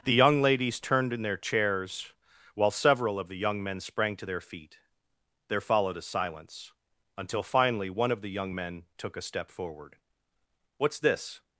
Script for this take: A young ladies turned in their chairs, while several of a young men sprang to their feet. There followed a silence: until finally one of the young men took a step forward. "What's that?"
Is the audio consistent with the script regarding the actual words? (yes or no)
no